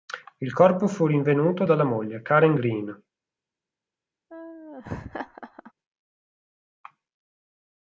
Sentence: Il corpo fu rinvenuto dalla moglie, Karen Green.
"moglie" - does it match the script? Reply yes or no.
yes